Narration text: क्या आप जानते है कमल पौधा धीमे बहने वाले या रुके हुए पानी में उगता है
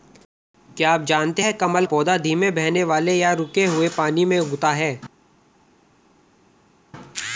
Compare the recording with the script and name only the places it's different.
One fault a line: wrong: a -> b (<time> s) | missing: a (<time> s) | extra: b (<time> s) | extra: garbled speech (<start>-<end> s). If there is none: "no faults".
no faults